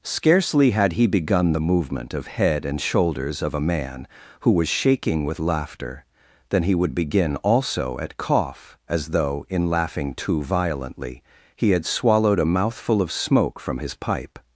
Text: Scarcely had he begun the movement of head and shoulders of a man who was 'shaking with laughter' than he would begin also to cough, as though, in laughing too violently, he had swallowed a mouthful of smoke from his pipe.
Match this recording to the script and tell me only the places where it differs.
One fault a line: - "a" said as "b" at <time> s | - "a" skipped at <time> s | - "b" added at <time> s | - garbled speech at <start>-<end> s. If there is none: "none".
- "to" said as "at" at 8.0 s